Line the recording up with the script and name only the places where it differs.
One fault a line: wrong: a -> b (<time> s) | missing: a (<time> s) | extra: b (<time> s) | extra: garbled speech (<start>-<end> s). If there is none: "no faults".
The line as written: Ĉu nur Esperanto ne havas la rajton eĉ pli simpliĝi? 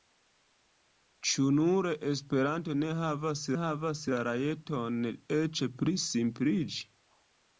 extra: havas (3.6 s)